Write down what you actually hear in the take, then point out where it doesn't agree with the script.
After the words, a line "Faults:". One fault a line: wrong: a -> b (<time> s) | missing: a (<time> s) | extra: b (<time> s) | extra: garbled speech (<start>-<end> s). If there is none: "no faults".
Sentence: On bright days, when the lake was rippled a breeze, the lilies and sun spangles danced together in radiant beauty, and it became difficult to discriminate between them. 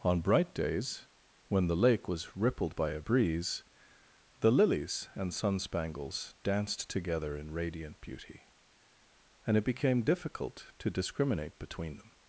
On bright days, when the lake was rippled by a breeze, the lilies and sun spangles danced together in radiant beauty, and it became difficult to discriminate between them.
Faults:
extra: by (2.7 s)